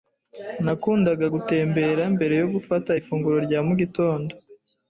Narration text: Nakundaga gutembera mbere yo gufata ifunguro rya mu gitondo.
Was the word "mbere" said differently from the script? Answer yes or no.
no